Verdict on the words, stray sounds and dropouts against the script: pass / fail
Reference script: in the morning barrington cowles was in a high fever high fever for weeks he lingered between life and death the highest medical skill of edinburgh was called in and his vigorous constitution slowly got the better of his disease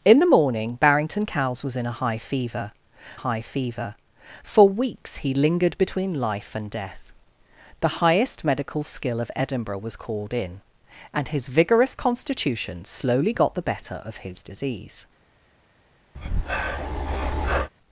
fail